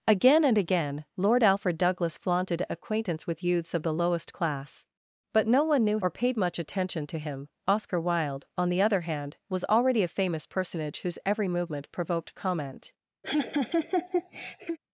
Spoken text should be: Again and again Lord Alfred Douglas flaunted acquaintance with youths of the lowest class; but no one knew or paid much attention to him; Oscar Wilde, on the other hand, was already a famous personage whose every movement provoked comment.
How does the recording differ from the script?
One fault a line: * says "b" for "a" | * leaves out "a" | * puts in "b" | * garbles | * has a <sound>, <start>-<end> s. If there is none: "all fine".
* has a laugh, 13.2-14.8 s